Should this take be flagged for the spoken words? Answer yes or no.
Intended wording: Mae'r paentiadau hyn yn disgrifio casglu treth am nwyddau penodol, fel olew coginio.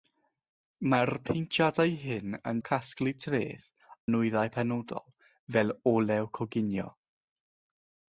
yes